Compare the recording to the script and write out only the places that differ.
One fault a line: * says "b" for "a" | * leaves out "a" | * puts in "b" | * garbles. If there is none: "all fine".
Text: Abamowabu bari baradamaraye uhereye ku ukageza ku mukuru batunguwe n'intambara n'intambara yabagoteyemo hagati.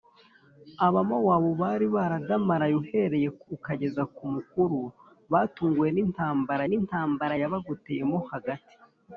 all fine